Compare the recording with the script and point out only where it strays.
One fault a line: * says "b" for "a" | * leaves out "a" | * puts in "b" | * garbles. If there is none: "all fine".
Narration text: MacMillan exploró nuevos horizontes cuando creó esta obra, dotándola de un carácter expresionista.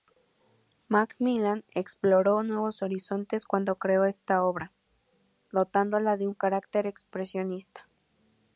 all fine